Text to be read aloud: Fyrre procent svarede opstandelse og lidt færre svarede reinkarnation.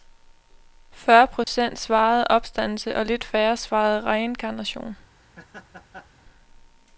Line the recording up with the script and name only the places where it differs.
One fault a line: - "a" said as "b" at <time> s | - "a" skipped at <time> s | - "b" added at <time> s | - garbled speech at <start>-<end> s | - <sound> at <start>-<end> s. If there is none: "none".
- dropout at 1.4-1.5 s
- laugh at 5.2-6.2 s